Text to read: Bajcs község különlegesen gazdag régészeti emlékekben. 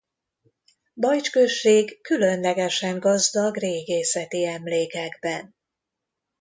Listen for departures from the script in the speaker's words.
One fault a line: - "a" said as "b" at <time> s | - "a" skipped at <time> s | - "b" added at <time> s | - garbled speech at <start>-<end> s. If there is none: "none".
none